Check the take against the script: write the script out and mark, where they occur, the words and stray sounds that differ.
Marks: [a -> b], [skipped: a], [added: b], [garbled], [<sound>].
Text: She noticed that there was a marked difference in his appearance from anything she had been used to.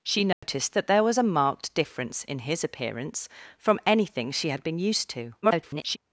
She noticed [dropout] that there was a marked difference in his appearance from anything she had been used to. [garbled]